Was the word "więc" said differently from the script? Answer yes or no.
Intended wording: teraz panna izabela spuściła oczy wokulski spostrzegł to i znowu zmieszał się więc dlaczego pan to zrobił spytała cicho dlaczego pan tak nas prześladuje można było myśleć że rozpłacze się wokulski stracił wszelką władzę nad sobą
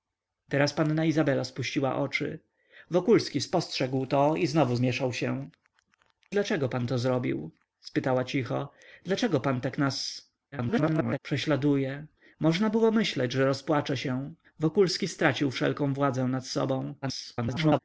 yes